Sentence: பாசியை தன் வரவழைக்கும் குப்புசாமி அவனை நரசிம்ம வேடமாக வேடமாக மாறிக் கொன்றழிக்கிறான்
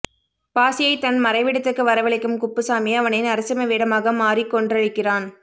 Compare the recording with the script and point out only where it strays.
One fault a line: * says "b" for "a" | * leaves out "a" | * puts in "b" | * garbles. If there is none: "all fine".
* puts in "மறைவிடத்துக்கு"
* leaves out "வேடமாக"